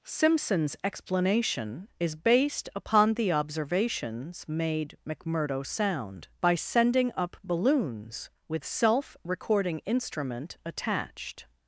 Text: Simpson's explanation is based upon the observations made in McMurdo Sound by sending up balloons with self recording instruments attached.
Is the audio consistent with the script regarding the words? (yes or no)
no